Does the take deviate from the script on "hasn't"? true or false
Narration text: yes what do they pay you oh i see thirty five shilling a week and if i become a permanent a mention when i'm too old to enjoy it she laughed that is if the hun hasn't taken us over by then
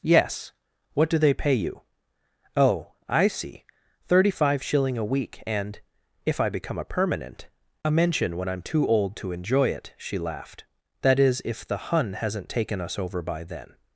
false